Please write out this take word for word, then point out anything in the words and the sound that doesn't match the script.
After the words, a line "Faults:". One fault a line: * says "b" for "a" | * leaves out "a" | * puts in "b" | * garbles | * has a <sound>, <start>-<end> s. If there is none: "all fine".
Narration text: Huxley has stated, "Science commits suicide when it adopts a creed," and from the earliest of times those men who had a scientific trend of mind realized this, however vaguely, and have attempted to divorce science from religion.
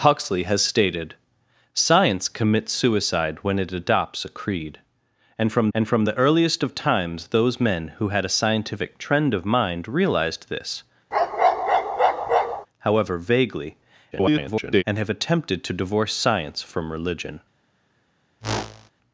Huxley has stated, "Science commits suicide when it adopts a creed," and from and from the earliest of times those men who had a scientific trend of mind realized this, however vaguely, [garbled] and have attempted to divorce science from religion.
Faults:
* puts in "and from"
* has a bark, 11.1-12.7 s
* garbles
* has a whoosh, 18.4-18.9 s